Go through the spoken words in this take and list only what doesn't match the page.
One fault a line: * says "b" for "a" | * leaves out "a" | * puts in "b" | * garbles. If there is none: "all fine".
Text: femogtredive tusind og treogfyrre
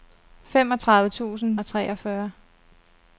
all fine